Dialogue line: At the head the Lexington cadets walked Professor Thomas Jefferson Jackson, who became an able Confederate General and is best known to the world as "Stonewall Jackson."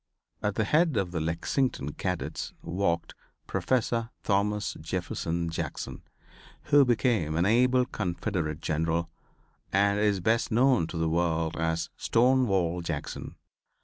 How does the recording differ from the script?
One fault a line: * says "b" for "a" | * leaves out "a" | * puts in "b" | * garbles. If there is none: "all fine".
* puts in "of"